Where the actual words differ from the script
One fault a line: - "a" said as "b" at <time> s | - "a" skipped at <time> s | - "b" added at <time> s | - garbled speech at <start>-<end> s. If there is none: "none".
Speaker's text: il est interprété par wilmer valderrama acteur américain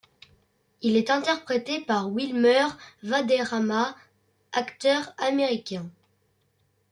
none